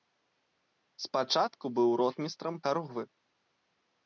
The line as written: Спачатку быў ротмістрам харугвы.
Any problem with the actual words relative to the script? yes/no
no